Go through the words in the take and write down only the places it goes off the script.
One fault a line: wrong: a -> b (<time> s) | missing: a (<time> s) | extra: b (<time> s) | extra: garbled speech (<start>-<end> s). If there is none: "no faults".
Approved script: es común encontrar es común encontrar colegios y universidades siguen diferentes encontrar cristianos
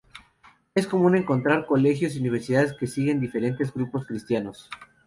missing: es común encontrar (1.7 s)
extra: que (2.7 s)
wrong: encontrar -> grupos (3.7 s)